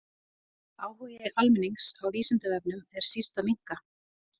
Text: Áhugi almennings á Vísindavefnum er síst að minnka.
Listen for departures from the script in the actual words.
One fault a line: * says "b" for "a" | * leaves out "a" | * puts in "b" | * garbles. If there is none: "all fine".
all fine